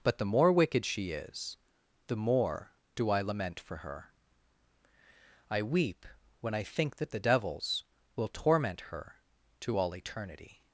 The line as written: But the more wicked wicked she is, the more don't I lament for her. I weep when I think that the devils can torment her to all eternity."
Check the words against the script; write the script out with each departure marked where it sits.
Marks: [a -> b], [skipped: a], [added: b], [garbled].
But the more wicked [skipped: wicked] she is, the more [don't -> do] I lament for her. I weep when I think that the devils [can -> will] torment her to all eternity."